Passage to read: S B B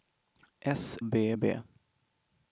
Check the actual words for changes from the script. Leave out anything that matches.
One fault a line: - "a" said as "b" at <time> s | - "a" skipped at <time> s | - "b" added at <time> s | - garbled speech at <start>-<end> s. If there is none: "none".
none